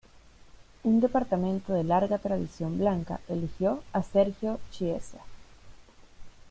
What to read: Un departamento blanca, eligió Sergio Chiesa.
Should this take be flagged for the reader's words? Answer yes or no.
yes